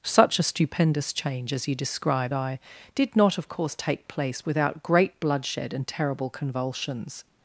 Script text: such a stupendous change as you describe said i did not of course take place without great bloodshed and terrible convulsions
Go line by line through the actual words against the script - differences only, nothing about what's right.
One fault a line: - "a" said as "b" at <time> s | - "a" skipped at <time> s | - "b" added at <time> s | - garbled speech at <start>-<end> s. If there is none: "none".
- "said" skipped at 2.3 s